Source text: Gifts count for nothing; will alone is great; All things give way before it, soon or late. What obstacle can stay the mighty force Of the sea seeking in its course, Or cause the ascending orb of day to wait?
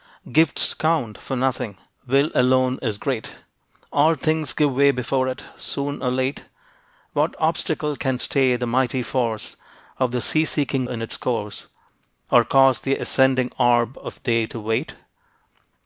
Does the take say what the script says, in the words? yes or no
yes